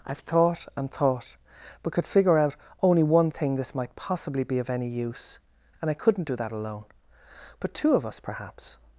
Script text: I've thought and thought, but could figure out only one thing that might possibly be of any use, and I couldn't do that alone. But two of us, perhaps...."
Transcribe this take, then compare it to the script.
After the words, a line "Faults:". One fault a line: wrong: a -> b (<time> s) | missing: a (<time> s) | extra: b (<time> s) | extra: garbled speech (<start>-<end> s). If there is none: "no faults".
I've thought and thought, but could figure out only one thing this might possibly be of any use, and I couldn't do that alone. But two of us, perhaps...."
Faults:
wrong: that -> this (3.5 s)